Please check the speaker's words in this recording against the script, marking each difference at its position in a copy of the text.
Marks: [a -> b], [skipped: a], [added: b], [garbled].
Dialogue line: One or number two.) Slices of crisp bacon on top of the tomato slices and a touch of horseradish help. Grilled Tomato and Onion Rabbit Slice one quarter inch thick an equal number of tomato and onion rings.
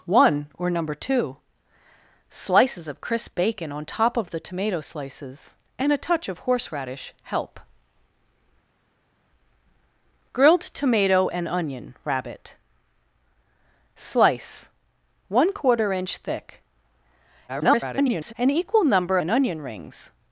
One or number two.) Slices of crisp bacon on top of the tomato slices and a touch of horseradish help. Grilled Tomato and Onion Rabbit Slice one quarter inch thick [garbled] an equal number [skipped: of tomato] and onion rings.